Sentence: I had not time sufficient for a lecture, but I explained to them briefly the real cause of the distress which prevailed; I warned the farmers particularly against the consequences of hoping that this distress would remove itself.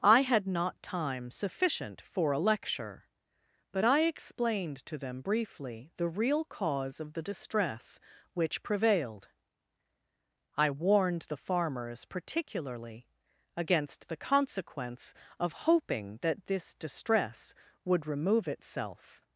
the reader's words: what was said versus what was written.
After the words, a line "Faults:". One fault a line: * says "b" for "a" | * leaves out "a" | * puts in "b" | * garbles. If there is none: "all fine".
I had not time sufficient for a lecture, but I explained to them briefly the real cause of the distress which prevailed; I warned the farmers particularly against the consequence of hoping that this distress would remove itself.
Faults:
* says "consequence" for "consequences"